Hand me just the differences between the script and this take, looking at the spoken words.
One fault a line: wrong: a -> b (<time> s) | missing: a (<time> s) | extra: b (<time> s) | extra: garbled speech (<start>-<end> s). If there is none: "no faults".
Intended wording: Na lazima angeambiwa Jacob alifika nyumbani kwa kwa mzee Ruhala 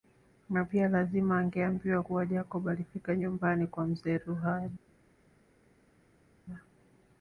extra: pia (0.6 s)
extra: kuwa (2.0 s)
missing: kwa (3.9 s)